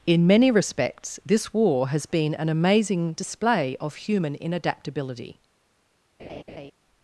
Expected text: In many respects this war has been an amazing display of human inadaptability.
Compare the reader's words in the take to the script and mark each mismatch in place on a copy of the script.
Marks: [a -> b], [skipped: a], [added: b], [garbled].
In many respects this war has been an amazing display of human inadaptability.